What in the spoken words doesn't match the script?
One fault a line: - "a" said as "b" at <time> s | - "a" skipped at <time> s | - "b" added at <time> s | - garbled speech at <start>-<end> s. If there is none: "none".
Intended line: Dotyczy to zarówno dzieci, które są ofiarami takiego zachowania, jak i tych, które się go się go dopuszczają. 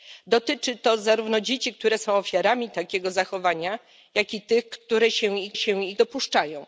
none